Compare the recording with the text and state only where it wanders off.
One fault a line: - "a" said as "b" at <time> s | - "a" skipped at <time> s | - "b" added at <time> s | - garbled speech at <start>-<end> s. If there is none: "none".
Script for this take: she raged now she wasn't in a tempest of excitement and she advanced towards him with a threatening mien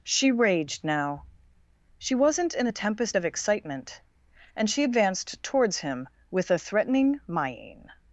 none